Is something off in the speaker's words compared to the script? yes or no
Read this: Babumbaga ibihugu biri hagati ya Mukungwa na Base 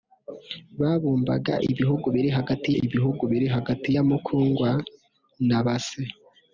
yes